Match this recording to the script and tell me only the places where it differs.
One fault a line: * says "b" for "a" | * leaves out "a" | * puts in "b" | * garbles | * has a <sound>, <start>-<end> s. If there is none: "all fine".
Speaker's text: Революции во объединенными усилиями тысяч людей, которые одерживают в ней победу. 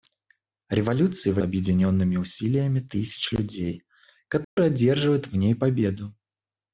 * has a dropout, 4.4-4.6 s